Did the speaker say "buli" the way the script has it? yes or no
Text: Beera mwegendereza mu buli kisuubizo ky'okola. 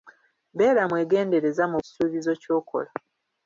no